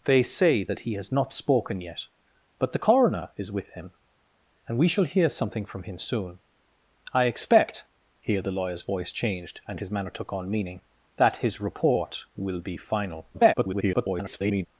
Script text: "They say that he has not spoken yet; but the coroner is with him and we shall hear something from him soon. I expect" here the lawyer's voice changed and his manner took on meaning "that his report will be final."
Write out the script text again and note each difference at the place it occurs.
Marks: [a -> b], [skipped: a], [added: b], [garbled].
"They say that he has not spoken yet; but the coroner is with him and we shall hear something from him soon. I expect" here the lawyer's voice changed and his manner took on meaning "that his report will be final." [garbled]